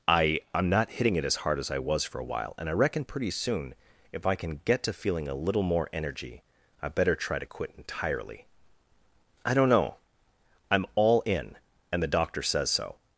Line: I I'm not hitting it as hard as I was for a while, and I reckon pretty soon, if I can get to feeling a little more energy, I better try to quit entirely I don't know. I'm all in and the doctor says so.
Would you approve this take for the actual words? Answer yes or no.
yes